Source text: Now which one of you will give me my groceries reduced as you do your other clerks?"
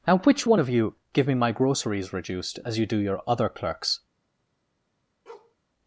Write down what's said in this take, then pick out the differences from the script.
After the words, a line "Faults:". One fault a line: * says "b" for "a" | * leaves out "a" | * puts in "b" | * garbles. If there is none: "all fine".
Now which one of you give me my groceries reduced as you do your other clerks?"
Faults:
* leaves out "will"